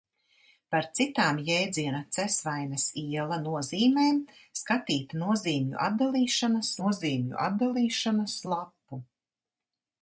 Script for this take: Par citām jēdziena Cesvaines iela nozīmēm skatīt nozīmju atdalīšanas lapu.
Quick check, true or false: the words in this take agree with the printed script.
false